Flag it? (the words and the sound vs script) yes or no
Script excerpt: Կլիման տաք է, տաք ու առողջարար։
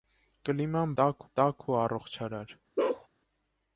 yes